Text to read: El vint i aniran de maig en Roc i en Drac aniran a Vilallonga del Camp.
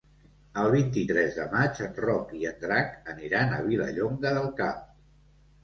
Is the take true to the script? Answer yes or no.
no